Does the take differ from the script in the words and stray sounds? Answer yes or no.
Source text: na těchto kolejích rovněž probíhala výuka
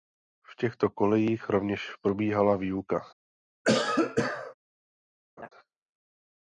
yes